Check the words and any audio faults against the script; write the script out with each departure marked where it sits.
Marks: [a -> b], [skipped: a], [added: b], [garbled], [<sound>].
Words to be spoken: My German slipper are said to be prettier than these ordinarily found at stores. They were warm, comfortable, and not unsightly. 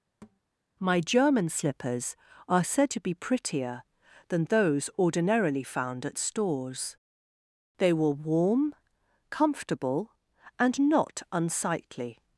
[thud] My German [slipper -> slippers] are said to be prettier than [these -> those] ordinarily found at stores. They were warm, comfortable, and not unsightly.